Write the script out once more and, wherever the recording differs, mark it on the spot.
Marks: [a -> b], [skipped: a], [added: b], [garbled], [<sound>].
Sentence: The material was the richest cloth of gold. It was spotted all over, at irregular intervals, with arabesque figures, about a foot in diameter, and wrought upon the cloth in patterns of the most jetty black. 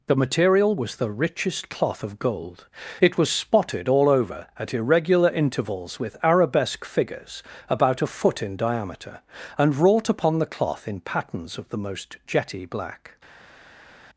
The material was the richest cloth of gold. It was spotted all over, at irregular intervals, with arabesque figures, about a foot in diameter, and wrought upon the cloth in patterns of the most jetty black.